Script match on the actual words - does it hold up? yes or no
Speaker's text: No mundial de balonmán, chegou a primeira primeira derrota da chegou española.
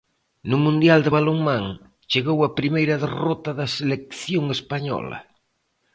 no